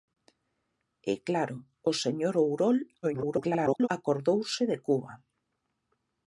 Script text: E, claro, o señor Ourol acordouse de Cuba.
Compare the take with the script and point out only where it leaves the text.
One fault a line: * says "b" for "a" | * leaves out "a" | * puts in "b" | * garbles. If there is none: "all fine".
* garbles